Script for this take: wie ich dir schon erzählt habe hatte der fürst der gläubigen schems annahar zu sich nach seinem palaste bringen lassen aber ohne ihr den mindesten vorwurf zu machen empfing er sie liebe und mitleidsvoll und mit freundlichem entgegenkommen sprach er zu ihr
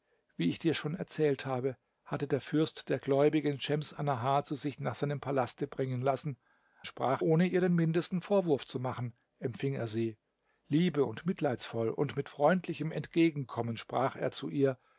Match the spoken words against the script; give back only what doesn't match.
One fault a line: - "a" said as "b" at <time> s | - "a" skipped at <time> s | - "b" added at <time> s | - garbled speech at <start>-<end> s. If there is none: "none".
- "aber" said as "sprach" at 6.8 s